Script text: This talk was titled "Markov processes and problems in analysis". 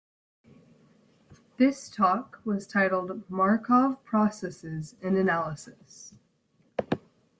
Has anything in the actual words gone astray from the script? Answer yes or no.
yes